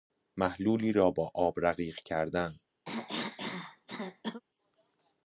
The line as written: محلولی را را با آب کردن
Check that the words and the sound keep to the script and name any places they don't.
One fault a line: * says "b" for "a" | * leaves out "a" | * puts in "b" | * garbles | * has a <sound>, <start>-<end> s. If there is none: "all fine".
* leaves out "را"
* puts in "رقیق"
* has a cough, 2.9-4.4 s